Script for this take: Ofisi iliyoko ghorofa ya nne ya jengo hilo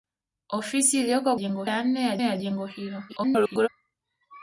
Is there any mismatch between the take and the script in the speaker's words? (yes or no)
yes